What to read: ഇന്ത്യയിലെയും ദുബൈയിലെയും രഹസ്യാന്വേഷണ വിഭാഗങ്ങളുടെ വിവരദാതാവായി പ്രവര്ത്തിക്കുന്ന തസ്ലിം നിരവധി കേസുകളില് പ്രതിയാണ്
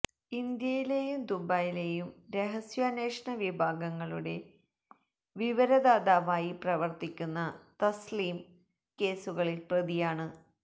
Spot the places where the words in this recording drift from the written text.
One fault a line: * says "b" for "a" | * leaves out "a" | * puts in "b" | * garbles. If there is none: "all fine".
* leaves out "നിരവധി"